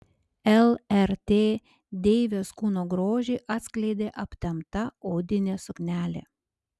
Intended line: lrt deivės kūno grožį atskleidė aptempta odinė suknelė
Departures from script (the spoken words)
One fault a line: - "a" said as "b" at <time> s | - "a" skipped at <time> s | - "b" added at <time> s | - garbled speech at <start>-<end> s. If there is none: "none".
none